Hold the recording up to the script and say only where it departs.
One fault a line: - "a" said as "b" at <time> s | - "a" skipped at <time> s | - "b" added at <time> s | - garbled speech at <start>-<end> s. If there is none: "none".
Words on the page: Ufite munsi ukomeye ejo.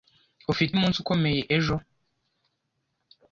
none